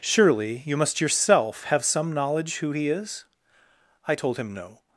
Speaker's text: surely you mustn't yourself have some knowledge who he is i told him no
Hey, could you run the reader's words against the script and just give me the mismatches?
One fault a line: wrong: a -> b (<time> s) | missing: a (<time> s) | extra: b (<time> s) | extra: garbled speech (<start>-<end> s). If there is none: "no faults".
wrong: mustn't -> must (0.8 s)